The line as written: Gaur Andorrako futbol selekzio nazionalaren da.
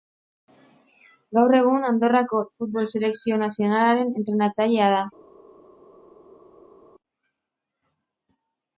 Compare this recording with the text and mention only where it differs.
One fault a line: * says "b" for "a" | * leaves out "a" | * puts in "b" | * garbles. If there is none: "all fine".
* puts in "egun"
* puts in "entrenatzailea"